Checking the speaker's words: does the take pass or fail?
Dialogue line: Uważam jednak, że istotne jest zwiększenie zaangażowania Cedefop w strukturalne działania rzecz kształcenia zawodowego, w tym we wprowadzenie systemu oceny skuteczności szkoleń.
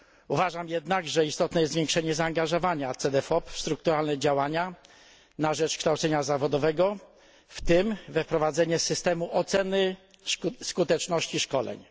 fail